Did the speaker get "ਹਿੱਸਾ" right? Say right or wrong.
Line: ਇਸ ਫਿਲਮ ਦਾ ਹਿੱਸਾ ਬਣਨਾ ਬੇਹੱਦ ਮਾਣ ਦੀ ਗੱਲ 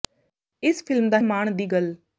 wrong